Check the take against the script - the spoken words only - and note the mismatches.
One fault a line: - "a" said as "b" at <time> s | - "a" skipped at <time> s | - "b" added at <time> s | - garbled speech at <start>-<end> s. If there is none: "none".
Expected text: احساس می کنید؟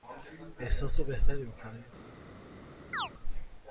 - "بهتری" added at 1.0 s